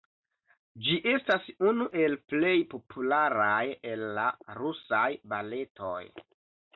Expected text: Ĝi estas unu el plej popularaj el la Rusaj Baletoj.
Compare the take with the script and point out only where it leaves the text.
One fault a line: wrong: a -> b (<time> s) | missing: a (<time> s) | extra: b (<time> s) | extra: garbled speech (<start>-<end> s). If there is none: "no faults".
no faults